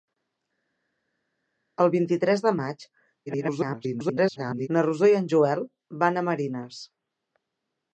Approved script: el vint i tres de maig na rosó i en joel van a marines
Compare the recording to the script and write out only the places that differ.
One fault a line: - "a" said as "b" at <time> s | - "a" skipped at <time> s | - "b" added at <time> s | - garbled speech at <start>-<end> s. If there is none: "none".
- garbled speech at 3.3-4.7 s